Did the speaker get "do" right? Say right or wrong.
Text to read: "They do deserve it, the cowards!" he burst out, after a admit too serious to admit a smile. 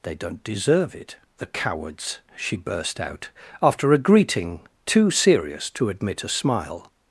wrong